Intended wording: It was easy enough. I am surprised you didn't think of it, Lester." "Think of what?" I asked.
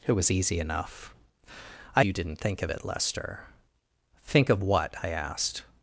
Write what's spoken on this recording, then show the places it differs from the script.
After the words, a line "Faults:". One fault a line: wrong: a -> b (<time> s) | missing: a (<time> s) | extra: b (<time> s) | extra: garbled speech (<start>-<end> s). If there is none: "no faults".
It was easy enough. I you didn't think of it, Lester." "Think of what?" I asked.
Faults:
missing: am surprised (2.0 s)